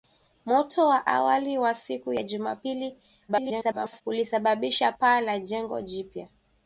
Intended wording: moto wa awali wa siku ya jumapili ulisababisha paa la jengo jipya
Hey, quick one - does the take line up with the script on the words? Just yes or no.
no